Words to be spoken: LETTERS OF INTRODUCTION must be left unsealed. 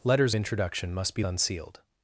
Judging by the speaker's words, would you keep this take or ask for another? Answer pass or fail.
fail